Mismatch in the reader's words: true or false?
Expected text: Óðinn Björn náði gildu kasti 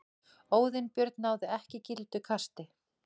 true